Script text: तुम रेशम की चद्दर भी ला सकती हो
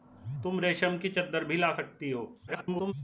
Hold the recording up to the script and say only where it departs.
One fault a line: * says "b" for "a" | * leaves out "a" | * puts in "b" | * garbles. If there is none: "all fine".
* garbles